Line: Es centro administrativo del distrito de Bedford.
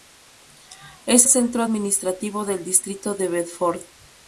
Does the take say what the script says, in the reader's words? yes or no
yes